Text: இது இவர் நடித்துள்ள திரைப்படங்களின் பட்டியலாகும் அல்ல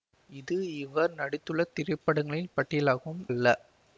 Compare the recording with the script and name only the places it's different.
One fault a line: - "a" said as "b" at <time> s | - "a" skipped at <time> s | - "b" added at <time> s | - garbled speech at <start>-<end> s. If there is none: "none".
none